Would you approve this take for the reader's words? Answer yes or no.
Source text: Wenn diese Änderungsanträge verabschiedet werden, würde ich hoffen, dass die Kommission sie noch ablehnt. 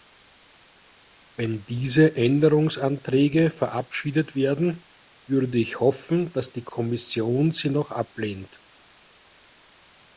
yes